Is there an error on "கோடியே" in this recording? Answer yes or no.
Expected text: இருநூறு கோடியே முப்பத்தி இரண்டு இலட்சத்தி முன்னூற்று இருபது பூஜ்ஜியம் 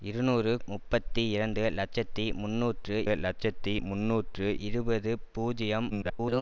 yes